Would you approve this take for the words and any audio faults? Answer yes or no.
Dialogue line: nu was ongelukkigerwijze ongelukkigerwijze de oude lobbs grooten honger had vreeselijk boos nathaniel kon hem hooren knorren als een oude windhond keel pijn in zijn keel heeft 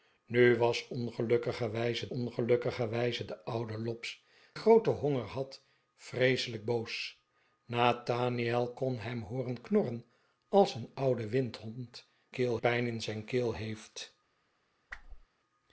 no